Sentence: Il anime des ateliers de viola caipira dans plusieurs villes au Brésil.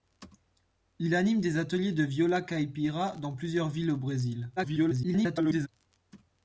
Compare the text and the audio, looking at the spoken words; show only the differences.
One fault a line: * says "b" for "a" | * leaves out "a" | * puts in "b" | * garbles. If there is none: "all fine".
* garbles